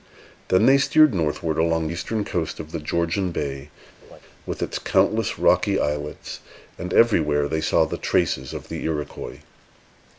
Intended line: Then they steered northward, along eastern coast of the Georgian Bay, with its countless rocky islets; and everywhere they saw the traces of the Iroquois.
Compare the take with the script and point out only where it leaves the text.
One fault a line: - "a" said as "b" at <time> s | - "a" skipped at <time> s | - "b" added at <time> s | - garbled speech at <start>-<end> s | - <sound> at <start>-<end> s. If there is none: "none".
- laugh at 4.0-4.2 s